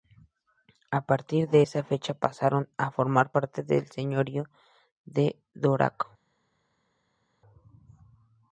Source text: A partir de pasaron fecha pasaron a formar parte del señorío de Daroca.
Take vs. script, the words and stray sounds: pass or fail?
fail